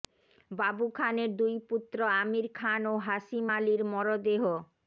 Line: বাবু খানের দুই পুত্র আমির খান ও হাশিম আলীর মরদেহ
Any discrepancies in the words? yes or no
no